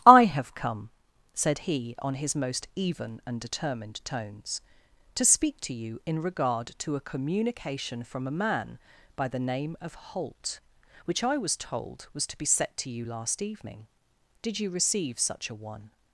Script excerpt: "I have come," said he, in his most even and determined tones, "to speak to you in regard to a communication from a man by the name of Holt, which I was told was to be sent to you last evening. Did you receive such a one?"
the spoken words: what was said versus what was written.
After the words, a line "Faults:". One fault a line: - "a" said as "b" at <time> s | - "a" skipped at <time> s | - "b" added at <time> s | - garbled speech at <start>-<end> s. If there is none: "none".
"I have come," said he, on his most even and determined tones, "to speak to you in regard to a communication from a man by the name of Holt, which I was told was to be set to you last evening. Did you receive such a one?"
Faults:
- "in" said as "on" at 2.0 s
- "sent" said as "set" at 12.4 s